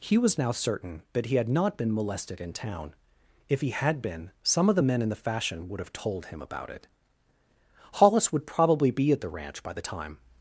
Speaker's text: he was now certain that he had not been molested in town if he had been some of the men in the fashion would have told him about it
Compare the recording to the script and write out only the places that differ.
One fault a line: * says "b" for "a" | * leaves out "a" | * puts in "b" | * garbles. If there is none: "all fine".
* puts in "hollis would probably be at the ranch by the time"